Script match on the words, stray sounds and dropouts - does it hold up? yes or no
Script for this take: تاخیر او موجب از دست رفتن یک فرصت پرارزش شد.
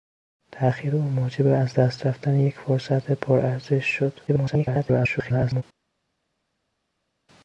no